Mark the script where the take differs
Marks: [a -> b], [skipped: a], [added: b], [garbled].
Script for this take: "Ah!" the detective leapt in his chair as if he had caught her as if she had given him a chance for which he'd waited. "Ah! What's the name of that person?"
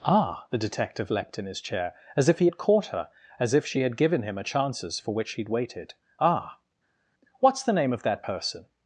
"Ah!" the detective leapt in his chair as if he had caught her as if she had given him a [chance -> chances] for which he'd waited. "Ah! What's the name of that person?"